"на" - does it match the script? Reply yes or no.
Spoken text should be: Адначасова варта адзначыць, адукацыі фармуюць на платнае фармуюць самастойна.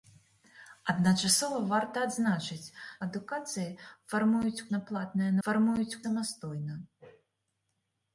yes